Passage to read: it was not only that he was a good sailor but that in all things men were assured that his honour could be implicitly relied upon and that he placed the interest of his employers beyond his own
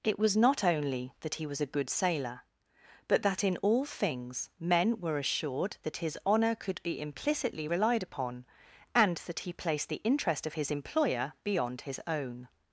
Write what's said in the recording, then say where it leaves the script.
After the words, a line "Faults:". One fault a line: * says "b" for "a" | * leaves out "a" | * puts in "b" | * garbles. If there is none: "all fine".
it was not only that he was a good sailor but that in all things men were assured that his honour could be implicitly relied upon and that he placed the interest of his employer beyond his own
Faults:
* says "employer" for "employers"